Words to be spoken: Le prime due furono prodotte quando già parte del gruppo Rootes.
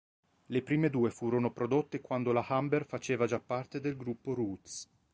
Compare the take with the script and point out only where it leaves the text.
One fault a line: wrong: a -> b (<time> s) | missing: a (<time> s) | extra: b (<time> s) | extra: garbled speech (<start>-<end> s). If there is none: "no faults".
extra: la Humber faceva (2.3 s)